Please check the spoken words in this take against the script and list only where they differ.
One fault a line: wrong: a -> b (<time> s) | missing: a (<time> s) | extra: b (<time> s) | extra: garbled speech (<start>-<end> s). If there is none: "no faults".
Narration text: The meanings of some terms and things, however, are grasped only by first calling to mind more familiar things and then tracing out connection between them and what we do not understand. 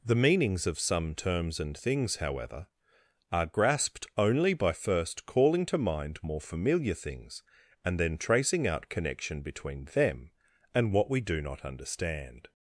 no faults